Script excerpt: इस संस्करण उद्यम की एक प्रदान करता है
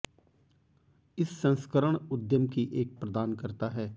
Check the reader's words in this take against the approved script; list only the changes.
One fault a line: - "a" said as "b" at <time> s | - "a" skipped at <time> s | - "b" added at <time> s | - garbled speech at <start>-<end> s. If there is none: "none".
none